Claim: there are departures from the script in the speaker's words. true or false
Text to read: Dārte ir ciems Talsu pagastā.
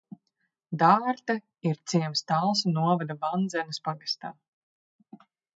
true